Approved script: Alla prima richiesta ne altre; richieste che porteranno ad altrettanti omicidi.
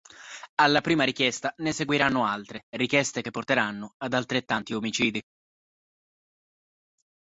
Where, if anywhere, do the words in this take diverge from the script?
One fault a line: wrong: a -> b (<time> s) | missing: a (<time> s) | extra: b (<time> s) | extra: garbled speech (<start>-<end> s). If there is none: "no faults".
extra: seguiranno (1.7 s)